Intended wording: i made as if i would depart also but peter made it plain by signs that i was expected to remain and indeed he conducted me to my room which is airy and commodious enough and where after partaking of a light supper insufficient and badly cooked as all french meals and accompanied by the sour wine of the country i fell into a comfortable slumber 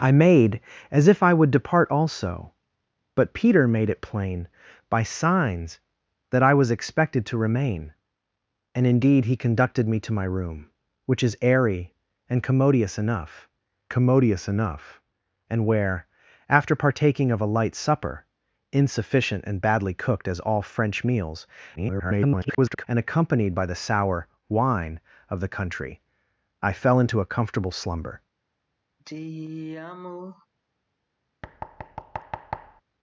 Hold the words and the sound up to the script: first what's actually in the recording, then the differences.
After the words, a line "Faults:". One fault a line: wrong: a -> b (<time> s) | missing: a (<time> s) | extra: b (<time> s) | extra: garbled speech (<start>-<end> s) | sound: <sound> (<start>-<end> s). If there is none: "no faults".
i made as if i would depart also but peter made it plain by signs that i was expected to remain and indeed he conducted me to my room which is airy and commodious enough commodious enough and where after partaking of a light supper insufficient and badly cooked as all french meals [garbled] and accompanied by the sour wine of the country i fell into a comfortable slumber
Faults:
extra: commodious enough (13.9 s)
extra: garbled speech (21.8-22.8 s)
sound: sigh (29.0-30.5 s)
sound: thud (31.4-32.8 s)